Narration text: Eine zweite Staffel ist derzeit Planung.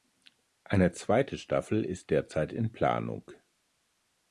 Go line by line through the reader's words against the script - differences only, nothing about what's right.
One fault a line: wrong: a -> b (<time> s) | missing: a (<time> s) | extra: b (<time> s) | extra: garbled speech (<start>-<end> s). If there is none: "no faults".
extra: in (2.5 s)